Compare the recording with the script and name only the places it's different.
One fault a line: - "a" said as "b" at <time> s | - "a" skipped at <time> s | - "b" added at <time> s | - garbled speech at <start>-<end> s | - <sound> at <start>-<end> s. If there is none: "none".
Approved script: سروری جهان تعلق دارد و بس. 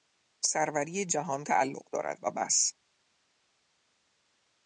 none